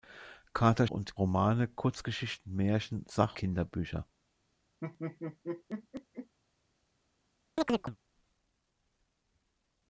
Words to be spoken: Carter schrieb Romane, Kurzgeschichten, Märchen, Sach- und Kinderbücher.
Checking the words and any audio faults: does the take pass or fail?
fail